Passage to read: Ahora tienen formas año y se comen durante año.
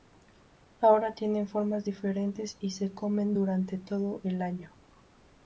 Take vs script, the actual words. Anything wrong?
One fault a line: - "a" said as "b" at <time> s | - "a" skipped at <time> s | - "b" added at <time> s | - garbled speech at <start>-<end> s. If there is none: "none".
- "año" said as "diferentes" at 1.8 s
- "todo el" added at 3.8 s